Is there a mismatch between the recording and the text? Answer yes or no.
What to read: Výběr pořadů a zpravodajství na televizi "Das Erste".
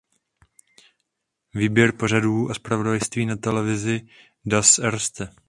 no